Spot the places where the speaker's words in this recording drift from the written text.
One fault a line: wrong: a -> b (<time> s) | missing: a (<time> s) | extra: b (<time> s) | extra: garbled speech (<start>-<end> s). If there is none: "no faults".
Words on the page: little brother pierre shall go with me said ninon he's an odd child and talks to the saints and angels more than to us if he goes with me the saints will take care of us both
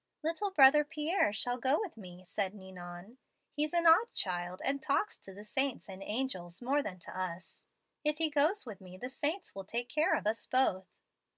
no faults